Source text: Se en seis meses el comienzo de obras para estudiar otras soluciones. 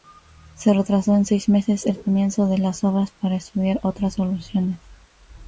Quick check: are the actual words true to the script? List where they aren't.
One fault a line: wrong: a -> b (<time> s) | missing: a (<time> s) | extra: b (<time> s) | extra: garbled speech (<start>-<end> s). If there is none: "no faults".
extra: retrasó (0.7 s)
extra: las (2.6 s)